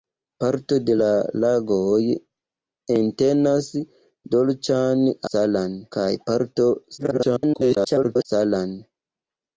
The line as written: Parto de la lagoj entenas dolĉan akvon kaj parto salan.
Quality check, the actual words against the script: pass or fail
fail